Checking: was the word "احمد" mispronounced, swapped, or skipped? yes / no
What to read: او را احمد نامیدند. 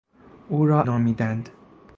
yes